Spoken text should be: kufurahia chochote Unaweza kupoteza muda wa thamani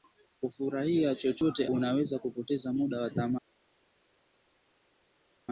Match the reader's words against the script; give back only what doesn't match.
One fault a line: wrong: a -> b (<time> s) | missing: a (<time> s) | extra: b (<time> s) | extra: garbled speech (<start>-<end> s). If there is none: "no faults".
no faults